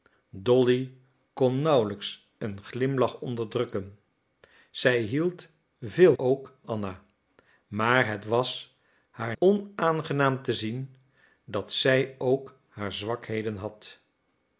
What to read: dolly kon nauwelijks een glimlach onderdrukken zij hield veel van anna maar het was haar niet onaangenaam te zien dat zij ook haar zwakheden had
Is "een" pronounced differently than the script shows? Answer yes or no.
no